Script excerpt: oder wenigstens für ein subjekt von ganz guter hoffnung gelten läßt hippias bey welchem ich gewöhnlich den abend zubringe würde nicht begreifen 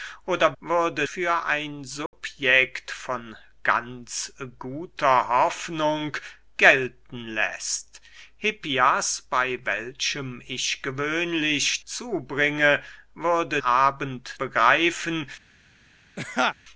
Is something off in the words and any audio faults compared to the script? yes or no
yes